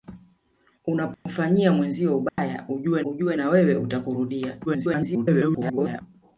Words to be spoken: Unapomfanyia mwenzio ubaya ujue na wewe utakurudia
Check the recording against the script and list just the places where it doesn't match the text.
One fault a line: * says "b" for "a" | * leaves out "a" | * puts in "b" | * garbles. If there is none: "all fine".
* puts in "ujue"
* garbles